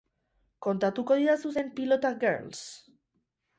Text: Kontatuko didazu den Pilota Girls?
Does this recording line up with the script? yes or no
yes